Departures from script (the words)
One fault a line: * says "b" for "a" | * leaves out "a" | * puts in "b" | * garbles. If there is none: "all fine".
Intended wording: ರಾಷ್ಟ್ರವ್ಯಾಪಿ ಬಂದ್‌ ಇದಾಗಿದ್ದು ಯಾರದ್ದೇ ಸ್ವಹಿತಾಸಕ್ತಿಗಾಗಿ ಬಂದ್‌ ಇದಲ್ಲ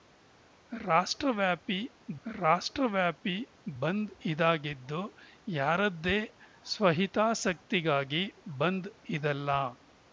* puts in "ರಾಷ್ಟ್ರವ್ಯಾಪಿ"